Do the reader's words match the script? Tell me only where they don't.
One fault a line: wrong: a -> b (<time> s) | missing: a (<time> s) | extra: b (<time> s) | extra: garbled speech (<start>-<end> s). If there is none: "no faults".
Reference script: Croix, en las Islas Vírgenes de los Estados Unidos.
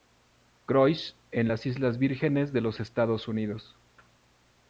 no faults